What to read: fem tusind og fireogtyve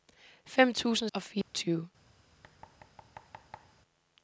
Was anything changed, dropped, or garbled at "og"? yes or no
no